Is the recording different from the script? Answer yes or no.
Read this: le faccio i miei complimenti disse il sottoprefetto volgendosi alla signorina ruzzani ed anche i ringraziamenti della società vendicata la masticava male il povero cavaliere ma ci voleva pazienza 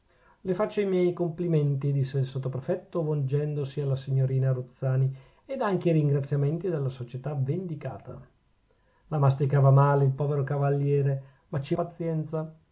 yes